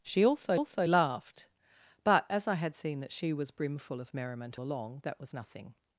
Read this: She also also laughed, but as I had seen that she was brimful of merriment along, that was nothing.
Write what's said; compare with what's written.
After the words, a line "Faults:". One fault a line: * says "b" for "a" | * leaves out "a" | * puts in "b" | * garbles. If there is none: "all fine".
She also also laughed, but as I had seen that she was brimful of merriment along, that was nothing.
Faults:
all fine